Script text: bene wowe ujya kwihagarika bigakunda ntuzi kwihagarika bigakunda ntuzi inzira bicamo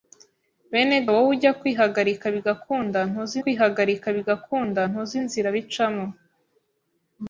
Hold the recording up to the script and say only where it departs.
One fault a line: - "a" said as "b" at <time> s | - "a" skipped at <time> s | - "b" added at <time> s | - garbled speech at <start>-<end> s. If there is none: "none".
none